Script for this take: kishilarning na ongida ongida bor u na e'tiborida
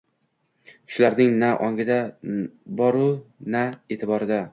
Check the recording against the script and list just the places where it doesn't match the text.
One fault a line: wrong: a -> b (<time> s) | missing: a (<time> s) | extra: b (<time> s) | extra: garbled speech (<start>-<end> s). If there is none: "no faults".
missing: ongida (2.0 s)